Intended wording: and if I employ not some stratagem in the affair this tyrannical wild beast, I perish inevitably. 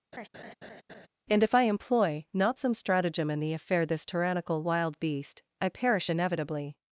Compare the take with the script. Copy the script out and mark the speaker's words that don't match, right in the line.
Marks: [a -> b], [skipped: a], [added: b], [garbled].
and if I employ not some stratagem in the affair this tyrannical wild beast, I perish inevitably.